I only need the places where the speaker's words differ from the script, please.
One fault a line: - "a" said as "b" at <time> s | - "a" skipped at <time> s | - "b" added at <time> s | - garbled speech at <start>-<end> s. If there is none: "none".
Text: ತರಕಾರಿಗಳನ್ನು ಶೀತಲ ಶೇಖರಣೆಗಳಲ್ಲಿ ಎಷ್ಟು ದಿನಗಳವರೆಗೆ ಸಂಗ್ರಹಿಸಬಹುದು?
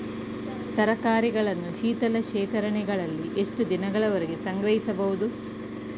none